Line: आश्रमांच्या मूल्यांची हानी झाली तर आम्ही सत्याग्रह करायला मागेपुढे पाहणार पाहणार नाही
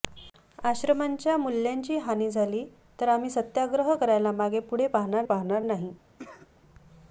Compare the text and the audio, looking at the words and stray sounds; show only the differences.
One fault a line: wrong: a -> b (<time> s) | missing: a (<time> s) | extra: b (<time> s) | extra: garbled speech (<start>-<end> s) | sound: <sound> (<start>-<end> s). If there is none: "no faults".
sound: cough (6.2-6.5 s)